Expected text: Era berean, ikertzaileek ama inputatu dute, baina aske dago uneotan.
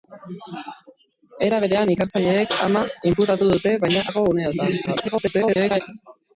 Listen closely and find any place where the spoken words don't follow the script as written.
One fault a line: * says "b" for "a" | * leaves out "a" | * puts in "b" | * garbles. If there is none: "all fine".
* leaves out "aske"
* garbles